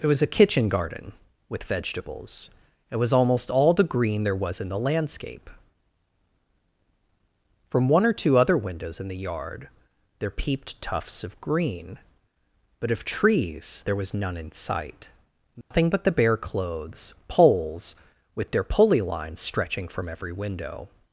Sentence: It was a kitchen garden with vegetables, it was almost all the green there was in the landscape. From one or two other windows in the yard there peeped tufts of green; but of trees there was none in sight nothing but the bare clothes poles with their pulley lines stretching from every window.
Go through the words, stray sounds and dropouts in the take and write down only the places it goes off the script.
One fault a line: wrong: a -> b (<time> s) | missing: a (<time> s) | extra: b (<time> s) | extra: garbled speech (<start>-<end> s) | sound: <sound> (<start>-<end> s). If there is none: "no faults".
sound: dropout (15.6-15.7 s)